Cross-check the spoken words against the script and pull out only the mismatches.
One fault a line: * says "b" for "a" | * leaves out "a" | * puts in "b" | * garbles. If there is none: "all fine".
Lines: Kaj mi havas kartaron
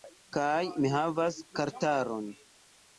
all fine